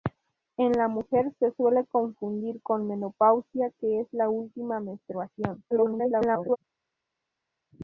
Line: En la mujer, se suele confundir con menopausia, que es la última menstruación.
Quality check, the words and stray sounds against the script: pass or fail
fail